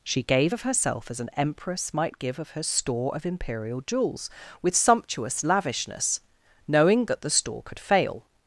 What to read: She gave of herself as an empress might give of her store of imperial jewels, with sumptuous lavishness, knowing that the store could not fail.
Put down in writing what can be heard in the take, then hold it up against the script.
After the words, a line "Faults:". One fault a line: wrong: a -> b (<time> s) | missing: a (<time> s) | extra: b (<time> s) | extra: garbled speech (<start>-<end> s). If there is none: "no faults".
She gave of herself as an empress might give of her store of imperial jewels, with sumptuous lavishness, knowing that the store could fail.
Faults:
missing: not (7.8 s)